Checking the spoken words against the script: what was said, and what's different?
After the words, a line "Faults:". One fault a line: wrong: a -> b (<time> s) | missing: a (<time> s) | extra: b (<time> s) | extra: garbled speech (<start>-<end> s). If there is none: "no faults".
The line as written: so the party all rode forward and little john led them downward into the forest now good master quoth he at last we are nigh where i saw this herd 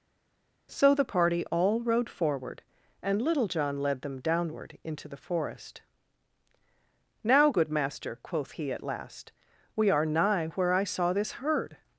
so the party all rode forward and little john led them downward into the forest now good master quoth he at last we are nigh where i saw this herd
Faults:
no faults